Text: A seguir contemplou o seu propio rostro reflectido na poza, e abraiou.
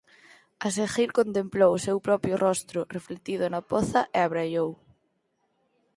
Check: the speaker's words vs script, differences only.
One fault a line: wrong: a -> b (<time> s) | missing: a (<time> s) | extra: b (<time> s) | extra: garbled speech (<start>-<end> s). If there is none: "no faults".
no faults